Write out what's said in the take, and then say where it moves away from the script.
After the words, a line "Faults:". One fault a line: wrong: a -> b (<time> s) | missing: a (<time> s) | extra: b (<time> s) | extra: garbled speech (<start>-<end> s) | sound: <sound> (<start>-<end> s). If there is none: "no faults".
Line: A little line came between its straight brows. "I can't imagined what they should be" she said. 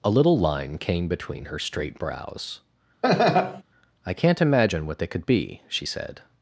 A little line came between her straight brows. "I can't imagine what they could be" she said.
Faults:
wrong: its -> her (1.4 s)
sound: laugh (3.0-3.6 s)
wrong: imagined -> imagine (4.4 s)
wrong: should -> could (5.1 s)